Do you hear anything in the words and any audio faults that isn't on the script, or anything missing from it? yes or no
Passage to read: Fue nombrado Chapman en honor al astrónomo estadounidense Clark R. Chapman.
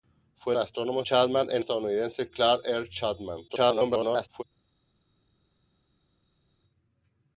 yes